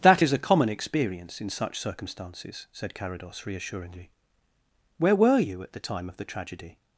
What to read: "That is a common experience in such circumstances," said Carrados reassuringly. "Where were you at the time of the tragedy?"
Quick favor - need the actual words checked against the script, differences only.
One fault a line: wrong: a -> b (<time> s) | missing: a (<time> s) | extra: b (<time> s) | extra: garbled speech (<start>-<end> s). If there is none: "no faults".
no faults